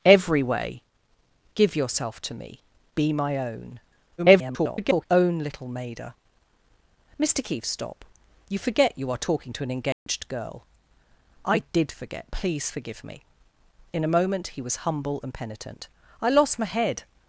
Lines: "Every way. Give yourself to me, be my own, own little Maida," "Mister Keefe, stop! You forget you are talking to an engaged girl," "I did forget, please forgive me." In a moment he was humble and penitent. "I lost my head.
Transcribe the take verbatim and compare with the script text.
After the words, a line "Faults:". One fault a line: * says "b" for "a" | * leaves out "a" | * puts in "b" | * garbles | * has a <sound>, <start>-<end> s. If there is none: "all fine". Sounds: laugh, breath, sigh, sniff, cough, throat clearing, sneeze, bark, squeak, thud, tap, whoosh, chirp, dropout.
"Every way. Give yourself to me, be my own, [garbled] own little Maida," "Mister Keefe, stop! You forget you are talking to an engaged girl," "I did forget, please forgive me." In a moment he was humble and penitent. "I lost my head.
Faults:
* garbles
* has a dropout, 9.9-10.1 s